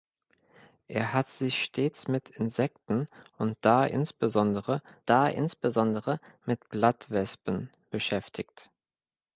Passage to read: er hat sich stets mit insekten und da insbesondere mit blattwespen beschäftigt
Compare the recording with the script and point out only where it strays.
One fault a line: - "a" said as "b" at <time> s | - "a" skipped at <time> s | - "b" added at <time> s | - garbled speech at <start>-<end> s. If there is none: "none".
- "da insbesondere" added at 5.1 s